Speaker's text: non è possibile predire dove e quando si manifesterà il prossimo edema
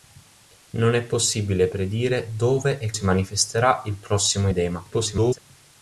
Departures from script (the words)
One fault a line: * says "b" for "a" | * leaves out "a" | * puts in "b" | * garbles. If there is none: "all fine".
* leaves out "quando"
* garbles